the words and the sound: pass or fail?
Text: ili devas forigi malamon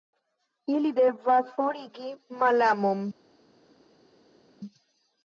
pass